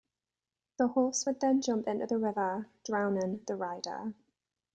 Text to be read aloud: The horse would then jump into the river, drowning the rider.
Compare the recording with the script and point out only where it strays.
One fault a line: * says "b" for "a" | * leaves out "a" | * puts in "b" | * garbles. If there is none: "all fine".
all fine